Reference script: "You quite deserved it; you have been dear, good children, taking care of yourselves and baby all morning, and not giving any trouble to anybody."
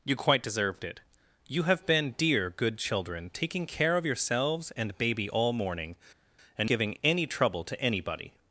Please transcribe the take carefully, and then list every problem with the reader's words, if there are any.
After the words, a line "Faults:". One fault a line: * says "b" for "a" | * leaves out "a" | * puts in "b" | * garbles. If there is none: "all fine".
"You quite deserved it; you have been dear, good children, taking care of yourselves and baby all morning, and giving any trouble to anybody."
Faults:
* leaves out "not"